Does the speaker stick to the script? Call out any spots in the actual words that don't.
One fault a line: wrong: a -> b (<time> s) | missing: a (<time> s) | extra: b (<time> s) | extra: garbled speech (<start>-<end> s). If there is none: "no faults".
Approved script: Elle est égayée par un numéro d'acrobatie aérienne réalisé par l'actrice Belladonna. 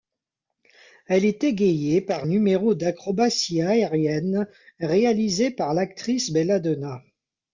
missing: un (2.3 s)